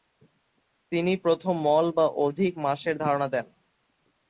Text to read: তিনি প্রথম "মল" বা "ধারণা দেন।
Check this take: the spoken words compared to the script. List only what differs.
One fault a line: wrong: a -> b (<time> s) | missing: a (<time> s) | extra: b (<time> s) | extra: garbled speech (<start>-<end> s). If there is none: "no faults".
extra: অধিক মাসের (2.2 s)